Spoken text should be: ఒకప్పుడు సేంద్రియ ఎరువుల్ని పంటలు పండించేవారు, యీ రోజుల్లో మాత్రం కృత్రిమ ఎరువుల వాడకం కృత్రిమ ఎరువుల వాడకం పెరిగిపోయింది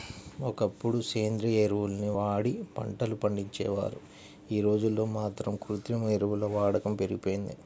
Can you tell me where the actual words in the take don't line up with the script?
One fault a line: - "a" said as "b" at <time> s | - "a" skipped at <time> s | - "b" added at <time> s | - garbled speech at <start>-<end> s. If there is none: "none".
- "వాడి" added at 2.2 s
- "కృత్రిమ ఎరువుల వాడకం" skipped at 6.9 s